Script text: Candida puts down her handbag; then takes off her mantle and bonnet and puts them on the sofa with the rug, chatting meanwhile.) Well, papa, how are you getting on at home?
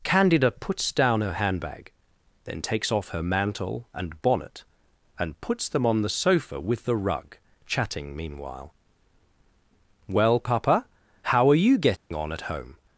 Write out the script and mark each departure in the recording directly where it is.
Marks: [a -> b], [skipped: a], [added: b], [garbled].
Candida puts down her handbag; then takes off her mantle and bonnet and puts them on the sofa with the rug, chatting meanwhile.) Well, papa, how are you getting on at home?